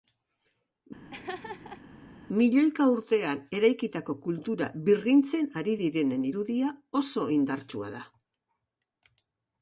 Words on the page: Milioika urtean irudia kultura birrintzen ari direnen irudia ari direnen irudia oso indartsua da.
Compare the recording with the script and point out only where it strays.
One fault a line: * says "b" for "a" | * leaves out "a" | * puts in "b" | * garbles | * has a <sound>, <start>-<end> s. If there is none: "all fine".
* has a laugh, 1.1-1.8 s
* says "eraikitako" for "irudia"
* leaves out "ari direnen irudia"